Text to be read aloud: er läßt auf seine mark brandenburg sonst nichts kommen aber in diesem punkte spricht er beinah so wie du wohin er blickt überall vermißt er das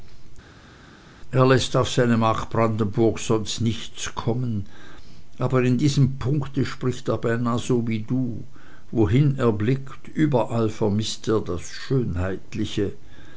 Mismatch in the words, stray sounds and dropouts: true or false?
false